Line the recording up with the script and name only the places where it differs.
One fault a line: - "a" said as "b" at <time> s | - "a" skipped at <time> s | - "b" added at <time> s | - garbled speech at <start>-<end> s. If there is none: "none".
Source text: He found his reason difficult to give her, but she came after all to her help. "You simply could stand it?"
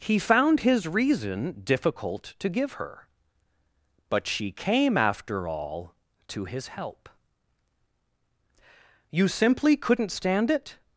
- "her" said as "his" at 6.5 s
- "could" said as "couldn't" at 9.8 s